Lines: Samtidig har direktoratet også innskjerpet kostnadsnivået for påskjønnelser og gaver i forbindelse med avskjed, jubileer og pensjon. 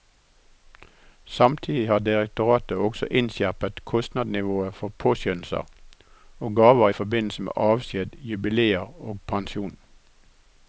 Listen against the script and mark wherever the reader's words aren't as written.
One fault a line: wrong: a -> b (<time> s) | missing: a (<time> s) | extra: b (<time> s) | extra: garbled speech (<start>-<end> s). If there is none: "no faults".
no faults